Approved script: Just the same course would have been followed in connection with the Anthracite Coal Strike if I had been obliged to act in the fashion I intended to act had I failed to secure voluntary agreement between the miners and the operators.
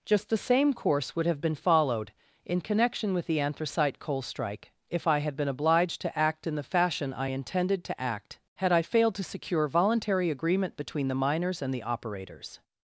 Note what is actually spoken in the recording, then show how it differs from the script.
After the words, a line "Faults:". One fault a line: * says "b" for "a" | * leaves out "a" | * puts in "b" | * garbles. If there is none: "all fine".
Just the same course would have been followed in connection with the Anthracite Coal Strike if I had been obliged to act in the fashion I intended to act had I failed to secure voluntary agreement between the miners and the operators.
Faults:
all fine